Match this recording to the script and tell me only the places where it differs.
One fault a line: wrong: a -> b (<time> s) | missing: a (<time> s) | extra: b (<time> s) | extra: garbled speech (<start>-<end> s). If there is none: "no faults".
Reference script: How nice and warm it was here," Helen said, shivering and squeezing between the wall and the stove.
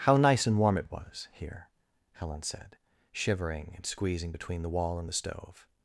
no faults